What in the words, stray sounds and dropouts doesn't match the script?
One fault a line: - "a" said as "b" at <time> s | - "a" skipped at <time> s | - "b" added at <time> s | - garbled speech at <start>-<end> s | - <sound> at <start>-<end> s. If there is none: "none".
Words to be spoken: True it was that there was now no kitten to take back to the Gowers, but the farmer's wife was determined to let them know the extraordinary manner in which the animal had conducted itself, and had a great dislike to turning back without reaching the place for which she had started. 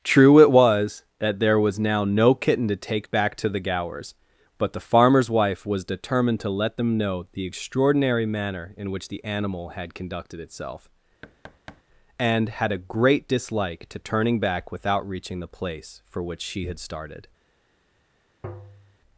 - thud at 11.2-11.8 s
- tap at 18.4-19.0 s